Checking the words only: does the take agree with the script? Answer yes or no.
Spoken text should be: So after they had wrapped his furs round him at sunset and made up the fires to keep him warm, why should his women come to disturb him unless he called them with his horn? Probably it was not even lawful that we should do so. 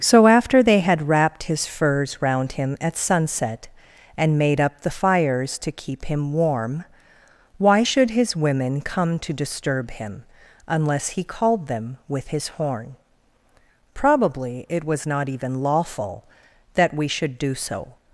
yes